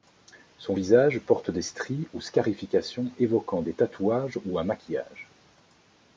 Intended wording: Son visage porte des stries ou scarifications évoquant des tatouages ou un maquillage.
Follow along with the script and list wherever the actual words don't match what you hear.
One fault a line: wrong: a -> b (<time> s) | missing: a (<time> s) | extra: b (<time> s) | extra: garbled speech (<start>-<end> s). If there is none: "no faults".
no faults